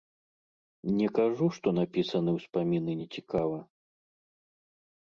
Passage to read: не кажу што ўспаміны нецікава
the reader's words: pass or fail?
fail